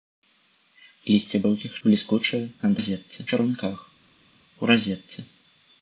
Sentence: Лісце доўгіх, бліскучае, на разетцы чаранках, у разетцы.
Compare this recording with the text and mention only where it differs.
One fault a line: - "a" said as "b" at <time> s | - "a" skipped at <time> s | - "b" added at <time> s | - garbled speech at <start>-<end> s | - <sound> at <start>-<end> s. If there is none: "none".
none